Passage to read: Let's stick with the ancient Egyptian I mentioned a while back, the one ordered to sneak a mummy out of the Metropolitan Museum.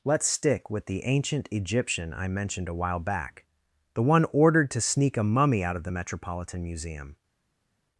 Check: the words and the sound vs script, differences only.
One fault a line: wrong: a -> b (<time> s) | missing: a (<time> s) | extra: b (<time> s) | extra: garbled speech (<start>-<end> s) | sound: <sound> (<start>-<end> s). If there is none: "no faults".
no faults